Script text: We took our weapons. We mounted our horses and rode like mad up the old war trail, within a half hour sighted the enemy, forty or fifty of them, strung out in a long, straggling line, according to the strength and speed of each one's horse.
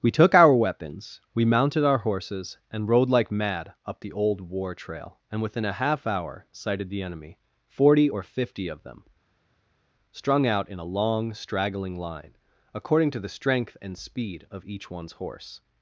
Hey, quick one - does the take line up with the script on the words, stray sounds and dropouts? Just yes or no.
no